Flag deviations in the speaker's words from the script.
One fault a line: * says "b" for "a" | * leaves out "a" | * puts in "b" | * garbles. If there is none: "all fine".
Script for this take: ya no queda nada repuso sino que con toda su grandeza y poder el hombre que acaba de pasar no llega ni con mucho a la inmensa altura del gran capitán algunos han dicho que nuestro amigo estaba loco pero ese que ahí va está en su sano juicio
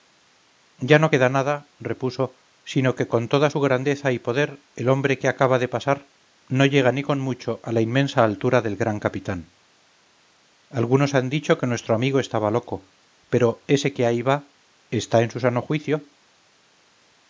all fine